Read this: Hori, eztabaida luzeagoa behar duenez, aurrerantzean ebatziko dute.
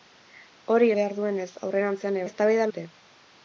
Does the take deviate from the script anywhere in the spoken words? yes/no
yes